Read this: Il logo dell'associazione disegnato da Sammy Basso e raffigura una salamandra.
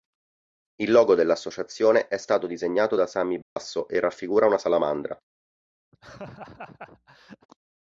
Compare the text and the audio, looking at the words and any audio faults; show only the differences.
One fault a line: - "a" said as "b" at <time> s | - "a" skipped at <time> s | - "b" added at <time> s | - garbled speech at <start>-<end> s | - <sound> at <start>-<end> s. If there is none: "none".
- "è stato" added at 2.1 s
- dropout at 3.4-3.6 s
- laugh at 5.9-7.5 s